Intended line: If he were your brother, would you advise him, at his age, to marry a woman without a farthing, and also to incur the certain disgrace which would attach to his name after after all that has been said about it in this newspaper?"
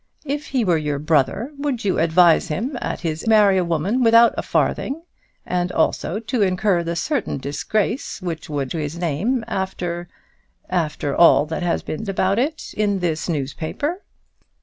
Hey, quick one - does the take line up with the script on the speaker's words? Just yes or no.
no